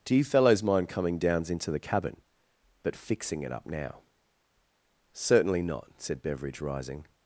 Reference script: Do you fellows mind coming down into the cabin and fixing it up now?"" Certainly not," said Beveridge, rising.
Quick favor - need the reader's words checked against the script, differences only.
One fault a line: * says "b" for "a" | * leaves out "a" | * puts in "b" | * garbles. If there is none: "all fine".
* says "downs" for "down"
* says "but" for "and"